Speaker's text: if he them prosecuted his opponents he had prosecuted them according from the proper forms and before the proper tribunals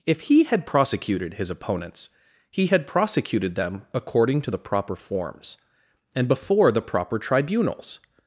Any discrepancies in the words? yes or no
yes